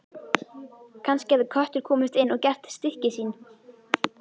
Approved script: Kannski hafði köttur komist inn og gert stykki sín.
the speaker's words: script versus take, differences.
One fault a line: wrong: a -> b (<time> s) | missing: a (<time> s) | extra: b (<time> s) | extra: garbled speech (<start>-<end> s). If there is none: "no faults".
no faults